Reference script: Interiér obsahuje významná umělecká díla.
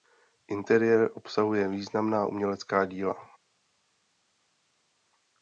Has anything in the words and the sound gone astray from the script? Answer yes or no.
no